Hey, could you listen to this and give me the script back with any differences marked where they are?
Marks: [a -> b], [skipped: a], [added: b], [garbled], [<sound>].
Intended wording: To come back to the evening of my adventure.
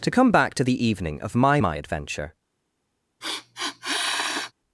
To come back to the evening of my [added: my] adventure. [sniff]